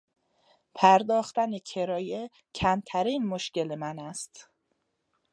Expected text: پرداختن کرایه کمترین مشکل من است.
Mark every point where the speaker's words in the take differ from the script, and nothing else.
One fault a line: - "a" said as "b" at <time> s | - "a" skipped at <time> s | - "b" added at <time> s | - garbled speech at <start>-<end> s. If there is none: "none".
none